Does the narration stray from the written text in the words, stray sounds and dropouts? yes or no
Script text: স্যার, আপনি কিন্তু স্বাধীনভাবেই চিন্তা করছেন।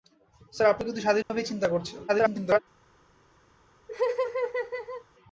yes